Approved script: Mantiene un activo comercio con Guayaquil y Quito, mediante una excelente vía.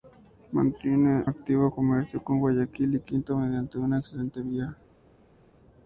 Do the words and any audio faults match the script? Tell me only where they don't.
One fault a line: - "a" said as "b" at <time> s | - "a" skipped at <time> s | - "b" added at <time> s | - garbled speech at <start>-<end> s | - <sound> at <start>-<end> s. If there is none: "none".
- "un" skipped at 1.3 s